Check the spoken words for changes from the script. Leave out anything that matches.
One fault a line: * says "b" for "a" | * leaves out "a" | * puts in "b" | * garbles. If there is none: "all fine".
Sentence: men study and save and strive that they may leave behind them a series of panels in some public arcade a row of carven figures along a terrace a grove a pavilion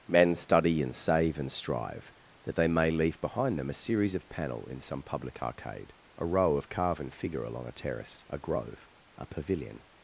* says "panel" for "panels"
* says "figure" for "figures"